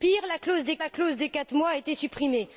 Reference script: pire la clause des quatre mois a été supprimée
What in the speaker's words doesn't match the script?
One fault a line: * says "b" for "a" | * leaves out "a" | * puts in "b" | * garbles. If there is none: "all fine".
* puts in "la clause des"